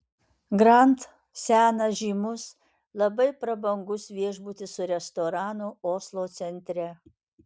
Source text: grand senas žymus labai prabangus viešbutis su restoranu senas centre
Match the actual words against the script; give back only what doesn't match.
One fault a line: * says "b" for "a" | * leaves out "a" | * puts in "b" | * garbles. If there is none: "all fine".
* says "oslo" for "senas"